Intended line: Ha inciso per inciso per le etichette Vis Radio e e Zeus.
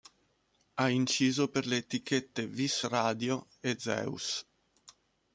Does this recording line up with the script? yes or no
no